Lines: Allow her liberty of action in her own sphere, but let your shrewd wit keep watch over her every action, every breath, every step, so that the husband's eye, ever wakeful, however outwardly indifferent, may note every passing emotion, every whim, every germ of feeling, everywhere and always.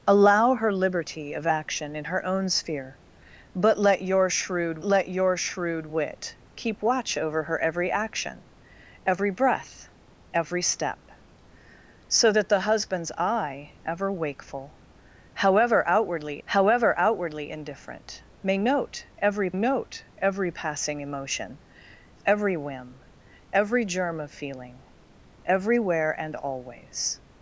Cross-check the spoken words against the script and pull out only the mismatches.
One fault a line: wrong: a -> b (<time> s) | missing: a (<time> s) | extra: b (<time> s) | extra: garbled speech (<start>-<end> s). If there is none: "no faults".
extra: let your shrewd (4.8 s)
extra: however outwardly (16.4 s)
extra: note every (19.5 s)